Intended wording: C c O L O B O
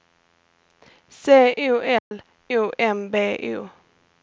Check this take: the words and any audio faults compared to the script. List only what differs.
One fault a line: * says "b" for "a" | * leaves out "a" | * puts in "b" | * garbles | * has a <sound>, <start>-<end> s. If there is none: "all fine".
* leaves out "c"
* has a dropout, 2.0-2.1 s
* puts in "M"